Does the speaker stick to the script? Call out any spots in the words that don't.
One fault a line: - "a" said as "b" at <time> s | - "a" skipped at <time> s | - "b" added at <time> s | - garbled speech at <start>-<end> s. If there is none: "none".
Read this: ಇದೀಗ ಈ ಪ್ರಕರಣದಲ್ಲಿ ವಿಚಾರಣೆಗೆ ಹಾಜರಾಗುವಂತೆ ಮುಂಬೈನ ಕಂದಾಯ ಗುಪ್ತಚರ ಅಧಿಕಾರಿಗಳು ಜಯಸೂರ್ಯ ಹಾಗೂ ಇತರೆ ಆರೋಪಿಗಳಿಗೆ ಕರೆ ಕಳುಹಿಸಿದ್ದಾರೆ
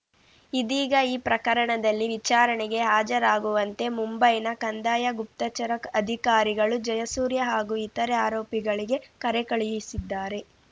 none